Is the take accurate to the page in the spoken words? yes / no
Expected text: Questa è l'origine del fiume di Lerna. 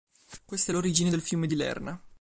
yes